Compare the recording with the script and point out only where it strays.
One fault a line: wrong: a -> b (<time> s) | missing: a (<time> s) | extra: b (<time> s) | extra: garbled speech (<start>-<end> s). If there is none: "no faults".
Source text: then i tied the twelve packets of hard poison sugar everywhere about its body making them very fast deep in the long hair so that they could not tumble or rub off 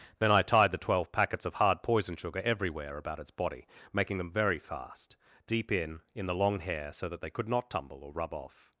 extra: in (6.1 s)